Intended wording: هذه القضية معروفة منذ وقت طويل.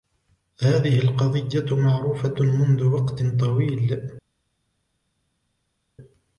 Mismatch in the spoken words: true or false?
false